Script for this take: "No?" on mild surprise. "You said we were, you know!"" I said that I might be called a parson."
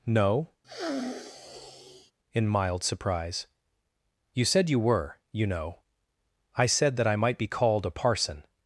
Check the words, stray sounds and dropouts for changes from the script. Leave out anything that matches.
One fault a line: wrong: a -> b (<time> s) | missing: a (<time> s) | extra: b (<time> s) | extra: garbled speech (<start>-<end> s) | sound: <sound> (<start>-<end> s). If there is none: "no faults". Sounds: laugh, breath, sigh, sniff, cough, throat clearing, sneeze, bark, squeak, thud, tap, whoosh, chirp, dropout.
sound: sniff (0.6-2.1 s)
wrong: on -> in (2.3 s)
wrong: we -> you (4.7 s)